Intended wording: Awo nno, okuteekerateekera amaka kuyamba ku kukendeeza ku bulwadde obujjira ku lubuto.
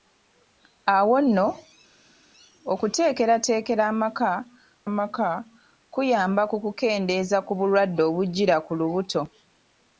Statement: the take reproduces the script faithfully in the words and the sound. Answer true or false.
false